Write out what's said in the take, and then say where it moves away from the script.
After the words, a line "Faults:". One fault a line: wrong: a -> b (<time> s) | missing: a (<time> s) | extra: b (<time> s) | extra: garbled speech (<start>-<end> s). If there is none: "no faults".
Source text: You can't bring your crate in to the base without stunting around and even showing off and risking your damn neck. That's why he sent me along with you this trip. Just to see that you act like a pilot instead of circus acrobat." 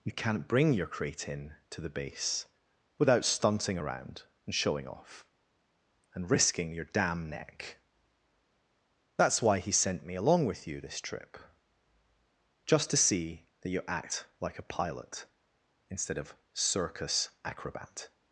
You can't bring your crate in to the base without stunting around and showing off and risking your damn neck. That's why he sent me along with you this trip. Just to see that you act like a pilot instead of circus acrobat."
Faults:
missing: even (4.5 s)